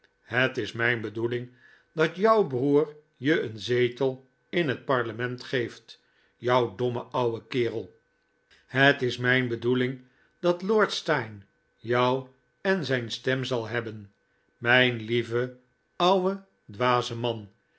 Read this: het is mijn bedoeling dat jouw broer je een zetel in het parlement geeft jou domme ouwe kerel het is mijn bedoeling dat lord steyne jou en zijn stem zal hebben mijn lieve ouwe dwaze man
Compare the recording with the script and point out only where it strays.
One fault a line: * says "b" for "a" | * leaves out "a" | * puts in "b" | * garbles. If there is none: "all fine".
all fine